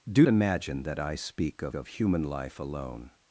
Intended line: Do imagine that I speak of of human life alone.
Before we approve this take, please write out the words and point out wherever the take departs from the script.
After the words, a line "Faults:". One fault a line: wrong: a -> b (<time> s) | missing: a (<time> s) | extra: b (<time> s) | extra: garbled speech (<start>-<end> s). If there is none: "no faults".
Do imagine that I speak of of human life alone.
Faults:
no faults